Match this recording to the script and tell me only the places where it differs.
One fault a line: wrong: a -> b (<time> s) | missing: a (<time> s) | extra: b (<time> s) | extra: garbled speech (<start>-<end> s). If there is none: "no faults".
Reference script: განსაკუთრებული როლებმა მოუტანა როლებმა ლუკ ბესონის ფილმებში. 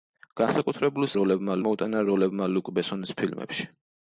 no faults